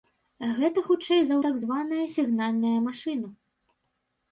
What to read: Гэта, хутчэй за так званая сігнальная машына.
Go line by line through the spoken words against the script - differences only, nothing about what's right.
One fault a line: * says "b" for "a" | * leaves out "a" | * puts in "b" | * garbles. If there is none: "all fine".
all fine